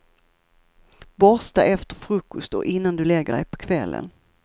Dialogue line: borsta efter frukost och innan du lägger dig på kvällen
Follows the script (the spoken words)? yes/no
yes